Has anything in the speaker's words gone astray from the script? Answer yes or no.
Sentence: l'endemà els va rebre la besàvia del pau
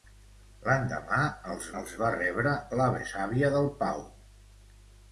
yes